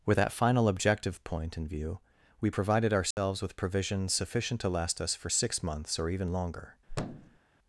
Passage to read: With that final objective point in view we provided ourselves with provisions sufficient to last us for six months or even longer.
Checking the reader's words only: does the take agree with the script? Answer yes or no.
yes